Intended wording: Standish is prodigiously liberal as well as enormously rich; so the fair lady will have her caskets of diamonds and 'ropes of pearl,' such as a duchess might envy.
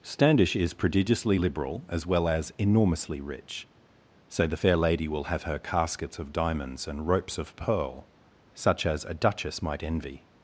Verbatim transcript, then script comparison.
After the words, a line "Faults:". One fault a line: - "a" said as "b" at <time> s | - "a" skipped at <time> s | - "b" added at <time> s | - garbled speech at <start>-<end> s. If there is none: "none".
Standish is prodigiously liberal as well as enormously rich; so the fair lady will have her caskets of diamonds and 'ropes of pearl,' such as a duchess might envy.
Faults:
none